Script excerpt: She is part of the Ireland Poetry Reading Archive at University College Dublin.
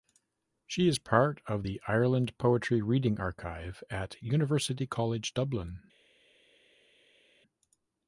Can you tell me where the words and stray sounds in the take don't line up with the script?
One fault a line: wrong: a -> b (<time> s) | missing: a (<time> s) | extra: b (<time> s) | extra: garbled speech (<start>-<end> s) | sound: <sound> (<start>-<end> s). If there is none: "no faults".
no faults